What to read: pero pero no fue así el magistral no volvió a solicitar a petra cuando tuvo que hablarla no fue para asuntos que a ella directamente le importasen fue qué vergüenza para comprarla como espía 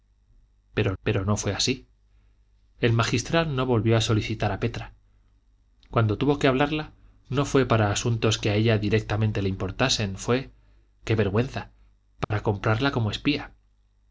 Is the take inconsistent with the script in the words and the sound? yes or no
yes